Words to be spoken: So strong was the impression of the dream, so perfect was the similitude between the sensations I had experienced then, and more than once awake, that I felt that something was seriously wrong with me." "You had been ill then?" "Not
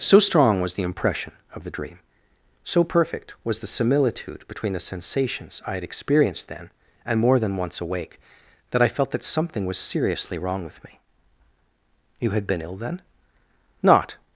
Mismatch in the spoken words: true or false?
false